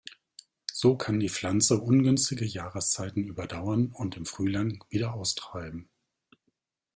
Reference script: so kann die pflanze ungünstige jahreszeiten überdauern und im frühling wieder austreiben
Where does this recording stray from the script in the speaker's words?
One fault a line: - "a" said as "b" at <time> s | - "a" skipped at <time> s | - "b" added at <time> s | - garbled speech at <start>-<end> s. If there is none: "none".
none